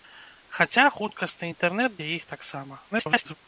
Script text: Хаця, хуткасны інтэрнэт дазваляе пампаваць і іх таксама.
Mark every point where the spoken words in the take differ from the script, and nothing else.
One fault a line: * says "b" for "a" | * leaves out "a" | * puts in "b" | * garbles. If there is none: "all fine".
* leaves out "дазваляе пампаваць"
* garbles